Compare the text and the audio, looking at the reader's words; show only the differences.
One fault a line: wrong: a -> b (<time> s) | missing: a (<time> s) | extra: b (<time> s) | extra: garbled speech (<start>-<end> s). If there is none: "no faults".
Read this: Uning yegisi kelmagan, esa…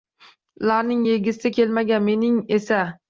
wrong: Uning -> Ularning (0.6 s)
extra: mening (2.1 s)